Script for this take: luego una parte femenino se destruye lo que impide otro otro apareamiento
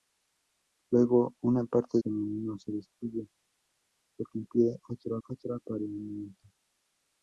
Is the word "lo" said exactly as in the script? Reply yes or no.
yes